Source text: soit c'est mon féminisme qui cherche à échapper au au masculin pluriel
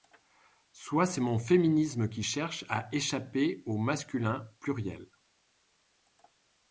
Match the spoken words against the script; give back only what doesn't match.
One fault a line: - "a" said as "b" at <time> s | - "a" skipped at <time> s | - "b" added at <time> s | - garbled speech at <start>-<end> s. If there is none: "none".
- "au" skipped at 3.8 s